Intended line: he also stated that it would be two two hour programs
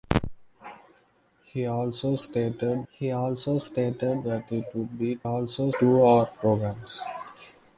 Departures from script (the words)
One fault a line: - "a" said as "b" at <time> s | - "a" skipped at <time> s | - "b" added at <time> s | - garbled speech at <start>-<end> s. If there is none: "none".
- "he also stated" added at 2.9 s
- "two" said as "also" at 5.2 s